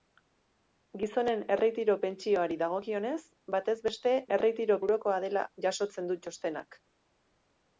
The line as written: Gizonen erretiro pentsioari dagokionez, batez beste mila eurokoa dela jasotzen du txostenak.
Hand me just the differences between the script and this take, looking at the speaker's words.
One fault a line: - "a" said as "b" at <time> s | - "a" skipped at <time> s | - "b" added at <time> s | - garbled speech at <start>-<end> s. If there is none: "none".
- "mila" said as "erretiro" at 4.4 s